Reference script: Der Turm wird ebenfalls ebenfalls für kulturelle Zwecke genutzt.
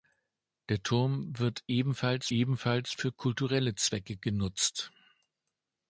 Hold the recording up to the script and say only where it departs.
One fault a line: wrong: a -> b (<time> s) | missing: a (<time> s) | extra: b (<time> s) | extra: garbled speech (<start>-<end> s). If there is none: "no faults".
no faults